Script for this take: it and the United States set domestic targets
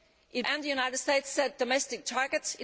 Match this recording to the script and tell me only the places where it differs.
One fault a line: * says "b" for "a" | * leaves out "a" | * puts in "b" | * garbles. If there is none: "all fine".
all fine